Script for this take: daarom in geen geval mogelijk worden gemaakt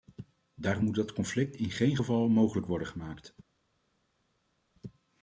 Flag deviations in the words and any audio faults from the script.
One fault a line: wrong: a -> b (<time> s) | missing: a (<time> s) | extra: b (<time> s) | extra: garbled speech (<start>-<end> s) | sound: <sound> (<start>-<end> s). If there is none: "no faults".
extra: moet dat conflict (0.8 s)